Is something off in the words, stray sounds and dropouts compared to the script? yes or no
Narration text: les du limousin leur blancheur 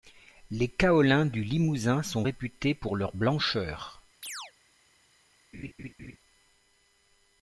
yes